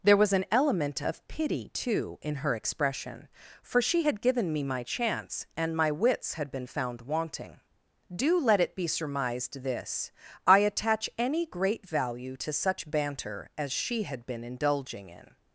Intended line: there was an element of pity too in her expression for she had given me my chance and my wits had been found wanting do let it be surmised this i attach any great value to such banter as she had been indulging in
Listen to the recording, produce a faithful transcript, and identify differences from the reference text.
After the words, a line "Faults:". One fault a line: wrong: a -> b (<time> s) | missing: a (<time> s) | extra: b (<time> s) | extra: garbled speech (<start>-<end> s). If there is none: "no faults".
there was an element of pity too in her expression for she had given me my chance and my wits had been found wanting do let it be surmised this i attach any great value to such banter as she had been indulging in
Faults:
no faults